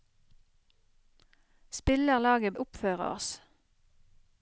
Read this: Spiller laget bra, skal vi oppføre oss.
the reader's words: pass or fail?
fail